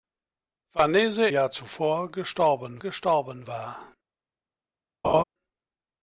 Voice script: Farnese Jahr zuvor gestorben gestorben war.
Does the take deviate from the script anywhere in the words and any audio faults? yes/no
yes